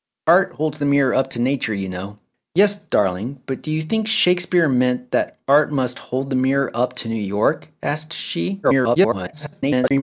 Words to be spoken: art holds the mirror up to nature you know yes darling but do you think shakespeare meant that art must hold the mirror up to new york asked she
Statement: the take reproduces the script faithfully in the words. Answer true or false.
false